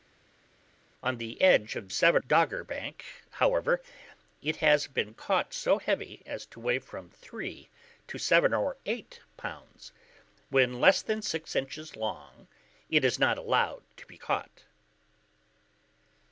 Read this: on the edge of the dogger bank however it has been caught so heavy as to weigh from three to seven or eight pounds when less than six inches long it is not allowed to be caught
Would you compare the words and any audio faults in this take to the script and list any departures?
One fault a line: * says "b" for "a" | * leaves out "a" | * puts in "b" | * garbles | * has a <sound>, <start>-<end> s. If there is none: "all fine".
* says "seven" for "the"